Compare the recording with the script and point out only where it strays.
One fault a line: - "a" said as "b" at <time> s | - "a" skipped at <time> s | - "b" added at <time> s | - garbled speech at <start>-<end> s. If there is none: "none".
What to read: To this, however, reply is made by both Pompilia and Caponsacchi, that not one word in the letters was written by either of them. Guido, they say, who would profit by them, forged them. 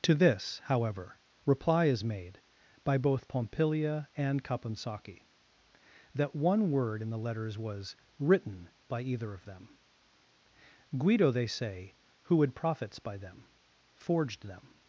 - "not" skipped at 6.3 s
- "profit" said as "profits" at 12.6 s